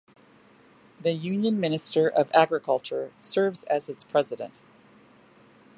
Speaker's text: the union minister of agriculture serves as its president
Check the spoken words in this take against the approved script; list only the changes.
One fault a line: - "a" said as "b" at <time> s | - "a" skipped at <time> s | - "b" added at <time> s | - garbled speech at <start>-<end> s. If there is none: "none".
none